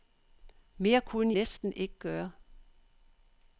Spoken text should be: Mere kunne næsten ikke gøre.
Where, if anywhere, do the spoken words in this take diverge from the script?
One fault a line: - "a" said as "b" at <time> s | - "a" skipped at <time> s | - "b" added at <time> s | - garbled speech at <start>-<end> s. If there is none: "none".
none